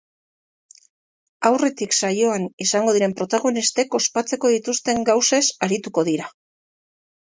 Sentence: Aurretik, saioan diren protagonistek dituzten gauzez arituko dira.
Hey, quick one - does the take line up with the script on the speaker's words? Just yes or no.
no